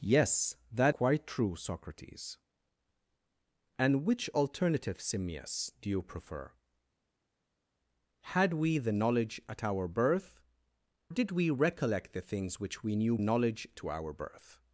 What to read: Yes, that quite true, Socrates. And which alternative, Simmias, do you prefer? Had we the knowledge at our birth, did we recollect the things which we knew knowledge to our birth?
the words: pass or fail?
pass